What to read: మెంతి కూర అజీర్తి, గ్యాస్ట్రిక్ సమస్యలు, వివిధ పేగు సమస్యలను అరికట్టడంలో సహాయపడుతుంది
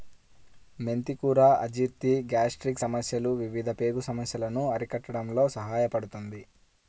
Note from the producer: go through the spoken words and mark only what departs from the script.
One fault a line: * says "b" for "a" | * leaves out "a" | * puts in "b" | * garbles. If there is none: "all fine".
all fine